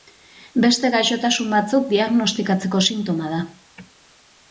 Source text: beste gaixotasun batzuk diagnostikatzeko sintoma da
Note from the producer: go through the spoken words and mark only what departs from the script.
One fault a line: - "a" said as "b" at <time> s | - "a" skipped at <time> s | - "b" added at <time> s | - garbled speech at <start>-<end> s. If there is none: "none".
none